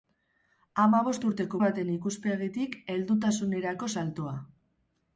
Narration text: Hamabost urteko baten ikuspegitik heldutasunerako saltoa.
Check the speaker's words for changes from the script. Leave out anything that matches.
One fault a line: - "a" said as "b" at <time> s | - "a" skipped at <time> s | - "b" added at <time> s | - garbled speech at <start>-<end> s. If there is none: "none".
none